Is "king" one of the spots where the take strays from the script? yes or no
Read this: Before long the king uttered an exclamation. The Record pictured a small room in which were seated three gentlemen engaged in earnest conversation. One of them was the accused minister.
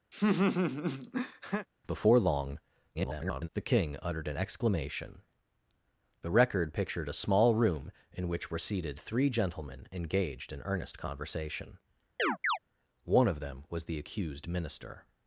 no